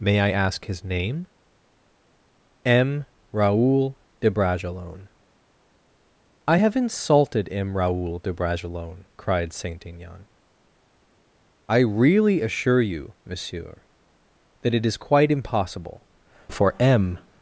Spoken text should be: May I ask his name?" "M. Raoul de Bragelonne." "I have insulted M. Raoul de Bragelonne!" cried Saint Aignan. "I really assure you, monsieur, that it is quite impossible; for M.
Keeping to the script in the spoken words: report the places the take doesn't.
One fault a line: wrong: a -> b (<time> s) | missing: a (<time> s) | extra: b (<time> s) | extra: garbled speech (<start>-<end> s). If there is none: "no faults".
no faults